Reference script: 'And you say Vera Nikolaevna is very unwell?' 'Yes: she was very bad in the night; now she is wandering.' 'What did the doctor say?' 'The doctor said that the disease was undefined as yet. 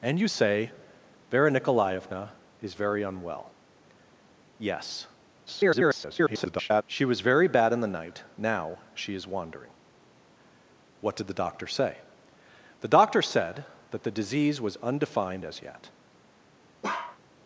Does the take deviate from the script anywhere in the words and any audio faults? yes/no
yes